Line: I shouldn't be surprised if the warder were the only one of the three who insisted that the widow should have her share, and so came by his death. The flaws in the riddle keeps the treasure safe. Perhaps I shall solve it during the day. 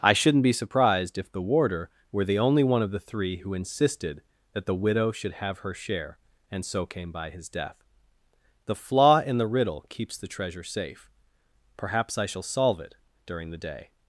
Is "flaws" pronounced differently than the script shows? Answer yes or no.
yes